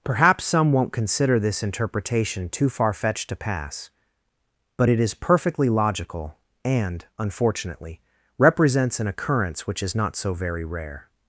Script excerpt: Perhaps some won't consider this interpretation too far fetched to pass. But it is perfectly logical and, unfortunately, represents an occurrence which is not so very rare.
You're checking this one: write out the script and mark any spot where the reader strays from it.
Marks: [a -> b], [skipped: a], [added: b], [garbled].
Perhaps some won't consider this interpretation too far fetched to pass. But it is perfectly logical and, unfortunately, represents an occurrence which is not so very rare.